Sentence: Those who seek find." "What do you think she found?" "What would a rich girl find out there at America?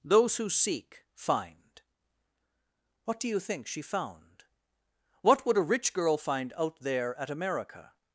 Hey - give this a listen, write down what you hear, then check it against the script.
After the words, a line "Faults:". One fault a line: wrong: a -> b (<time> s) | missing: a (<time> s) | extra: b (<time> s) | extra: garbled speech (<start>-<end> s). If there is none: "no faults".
Those who seek find." "What do you think she found?" "What would a rich girl find out there at America?
Faults:
no faults